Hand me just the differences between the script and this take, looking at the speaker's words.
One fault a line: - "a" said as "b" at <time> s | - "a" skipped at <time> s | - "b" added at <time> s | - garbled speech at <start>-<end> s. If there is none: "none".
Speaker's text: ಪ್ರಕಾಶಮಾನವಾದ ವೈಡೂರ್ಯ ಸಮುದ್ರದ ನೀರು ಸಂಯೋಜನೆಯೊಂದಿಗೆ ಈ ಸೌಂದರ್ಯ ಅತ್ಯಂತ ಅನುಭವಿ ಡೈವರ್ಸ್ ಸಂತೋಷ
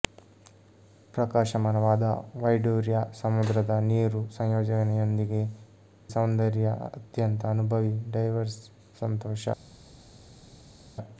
- "ಈ" skipped at 5.4 s